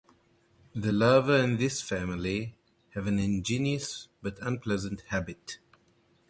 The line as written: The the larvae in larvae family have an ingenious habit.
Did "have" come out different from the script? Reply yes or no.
no